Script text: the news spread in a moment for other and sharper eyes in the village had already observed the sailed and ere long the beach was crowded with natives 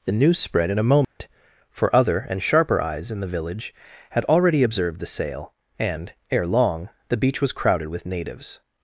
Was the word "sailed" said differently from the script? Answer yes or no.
yes